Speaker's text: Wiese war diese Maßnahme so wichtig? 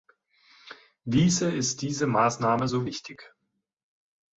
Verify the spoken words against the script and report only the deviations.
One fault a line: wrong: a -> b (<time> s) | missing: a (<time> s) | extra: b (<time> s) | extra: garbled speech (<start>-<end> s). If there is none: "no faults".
wrong: war -> ist (1.5 s)